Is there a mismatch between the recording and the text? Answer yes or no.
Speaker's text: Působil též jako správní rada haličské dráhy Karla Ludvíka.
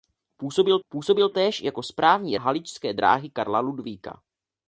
yes